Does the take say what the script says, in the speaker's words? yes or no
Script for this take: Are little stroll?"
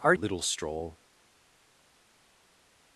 yes